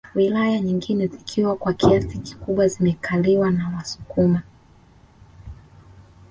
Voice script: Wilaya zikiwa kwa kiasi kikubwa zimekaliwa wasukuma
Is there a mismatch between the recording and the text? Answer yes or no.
yes